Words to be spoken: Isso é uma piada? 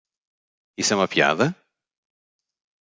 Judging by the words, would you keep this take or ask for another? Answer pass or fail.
pass